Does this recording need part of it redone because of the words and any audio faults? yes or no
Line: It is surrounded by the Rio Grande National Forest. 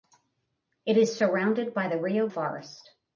yes